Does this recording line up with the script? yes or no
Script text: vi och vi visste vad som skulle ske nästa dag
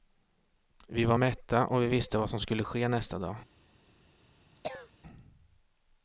no